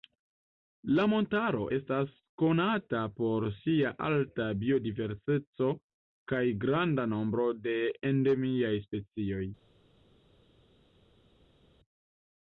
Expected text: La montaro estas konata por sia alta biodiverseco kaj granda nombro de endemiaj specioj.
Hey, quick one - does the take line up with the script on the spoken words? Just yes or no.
yes